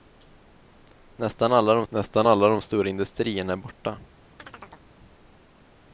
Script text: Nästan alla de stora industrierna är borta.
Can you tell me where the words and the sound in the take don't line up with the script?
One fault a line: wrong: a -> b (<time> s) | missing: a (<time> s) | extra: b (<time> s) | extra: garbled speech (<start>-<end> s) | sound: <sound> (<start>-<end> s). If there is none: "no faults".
extra: nästan alla de (1.9 s)
sound: chirp (4.4-4.9 s)